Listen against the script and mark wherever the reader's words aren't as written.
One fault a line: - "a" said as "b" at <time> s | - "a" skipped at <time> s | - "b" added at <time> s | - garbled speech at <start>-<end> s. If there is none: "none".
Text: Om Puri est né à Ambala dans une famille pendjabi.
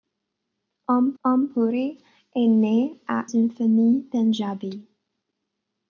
- "om" added at 1.2 s
- "Ambala dans" skipped at 3.2 s